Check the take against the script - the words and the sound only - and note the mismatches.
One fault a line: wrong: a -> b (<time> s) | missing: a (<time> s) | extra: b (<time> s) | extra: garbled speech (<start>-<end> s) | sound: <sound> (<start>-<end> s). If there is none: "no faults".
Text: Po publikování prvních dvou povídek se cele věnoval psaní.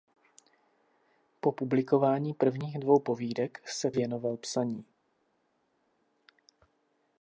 missing: cele (3.9 s)